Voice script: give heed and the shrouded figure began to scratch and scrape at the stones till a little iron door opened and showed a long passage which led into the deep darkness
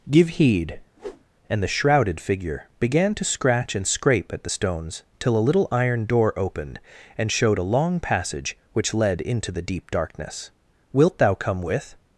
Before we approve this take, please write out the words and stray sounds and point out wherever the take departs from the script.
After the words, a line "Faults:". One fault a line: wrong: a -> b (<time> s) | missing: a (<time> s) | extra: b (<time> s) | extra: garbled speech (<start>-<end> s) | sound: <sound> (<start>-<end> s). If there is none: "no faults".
give heed and the shrouded figure began to scratch and scrape at the stones till a little iron door opened and showed a long passage which led into the deep darkness wilt thou come with
Faults:
sound: whoosh (1.0-1.2 s)
extra: wilt thou come with (10.9 s)